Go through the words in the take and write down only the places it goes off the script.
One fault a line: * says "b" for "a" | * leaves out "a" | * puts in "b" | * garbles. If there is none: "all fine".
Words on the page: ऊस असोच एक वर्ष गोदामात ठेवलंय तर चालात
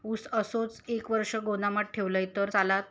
all fine